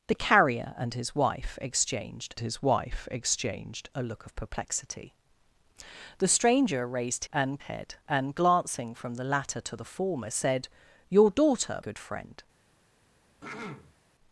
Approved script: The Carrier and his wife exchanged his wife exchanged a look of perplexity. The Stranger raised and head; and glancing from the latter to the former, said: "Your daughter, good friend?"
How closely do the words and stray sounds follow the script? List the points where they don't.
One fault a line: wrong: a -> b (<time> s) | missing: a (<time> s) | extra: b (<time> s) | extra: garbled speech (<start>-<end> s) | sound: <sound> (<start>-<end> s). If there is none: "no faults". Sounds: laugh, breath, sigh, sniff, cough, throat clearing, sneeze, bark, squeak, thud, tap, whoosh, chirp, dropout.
sound: throat clearing (13.4-14.0 s)